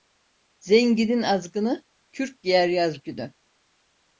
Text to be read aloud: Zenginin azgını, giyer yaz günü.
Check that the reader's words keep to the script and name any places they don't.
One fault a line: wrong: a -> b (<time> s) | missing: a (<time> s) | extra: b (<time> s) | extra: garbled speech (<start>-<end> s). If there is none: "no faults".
extra: kürk (2.1 s)